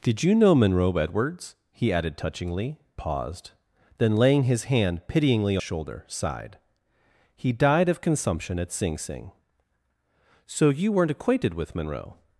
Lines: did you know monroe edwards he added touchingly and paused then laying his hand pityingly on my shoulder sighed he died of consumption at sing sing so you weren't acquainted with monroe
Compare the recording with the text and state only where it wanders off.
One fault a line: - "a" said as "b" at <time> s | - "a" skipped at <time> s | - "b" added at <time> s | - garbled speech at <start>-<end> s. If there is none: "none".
- "and" skipped at 2.8 s
- "on my" skipped at 5.6 s